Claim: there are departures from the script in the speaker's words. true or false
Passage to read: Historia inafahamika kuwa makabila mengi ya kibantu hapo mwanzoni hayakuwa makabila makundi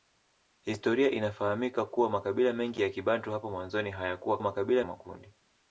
false